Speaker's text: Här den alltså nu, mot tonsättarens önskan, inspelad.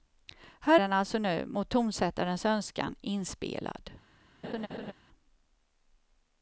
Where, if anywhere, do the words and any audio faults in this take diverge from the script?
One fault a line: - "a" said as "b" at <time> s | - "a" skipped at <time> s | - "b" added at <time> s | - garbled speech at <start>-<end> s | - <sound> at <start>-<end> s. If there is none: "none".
- laugh at 4.4-4.9 s